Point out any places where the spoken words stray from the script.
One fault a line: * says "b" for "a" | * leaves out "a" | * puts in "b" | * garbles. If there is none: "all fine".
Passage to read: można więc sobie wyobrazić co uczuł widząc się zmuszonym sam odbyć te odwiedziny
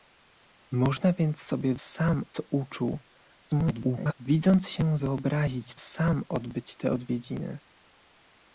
* says "sam" for "wyobrazić"
* garbles
* says "wyobrazić" for "zmuszonym"